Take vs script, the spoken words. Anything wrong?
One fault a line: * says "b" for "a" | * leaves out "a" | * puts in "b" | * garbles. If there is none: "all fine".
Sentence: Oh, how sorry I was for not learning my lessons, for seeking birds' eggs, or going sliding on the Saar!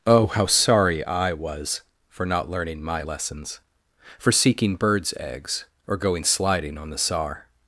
all fine